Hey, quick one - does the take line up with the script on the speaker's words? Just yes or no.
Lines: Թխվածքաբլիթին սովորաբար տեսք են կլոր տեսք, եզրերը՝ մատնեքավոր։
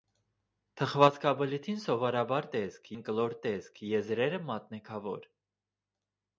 yes